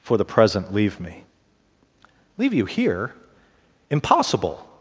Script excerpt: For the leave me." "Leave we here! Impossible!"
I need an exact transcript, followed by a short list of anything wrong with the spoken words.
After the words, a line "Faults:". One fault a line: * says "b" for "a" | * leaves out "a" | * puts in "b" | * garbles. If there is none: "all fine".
For the present leave me." "Leave you here! Impossible!"
Faults:
* puts in "present"
* says "you" for "we"